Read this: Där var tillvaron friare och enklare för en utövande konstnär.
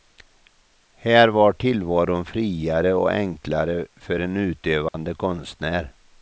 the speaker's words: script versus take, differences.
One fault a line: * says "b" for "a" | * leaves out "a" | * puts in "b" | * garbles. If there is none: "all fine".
* says "Här" for "Där"